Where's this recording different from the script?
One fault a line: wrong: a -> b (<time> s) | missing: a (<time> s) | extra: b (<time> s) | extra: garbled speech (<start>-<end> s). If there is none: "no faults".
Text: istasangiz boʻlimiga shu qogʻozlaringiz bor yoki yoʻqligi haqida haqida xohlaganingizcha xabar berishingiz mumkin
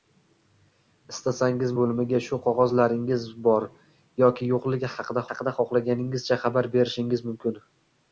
no faults